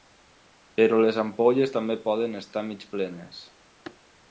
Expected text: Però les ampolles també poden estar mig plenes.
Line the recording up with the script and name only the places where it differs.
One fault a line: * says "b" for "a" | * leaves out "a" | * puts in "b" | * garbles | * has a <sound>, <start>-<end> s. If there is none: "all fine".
all fine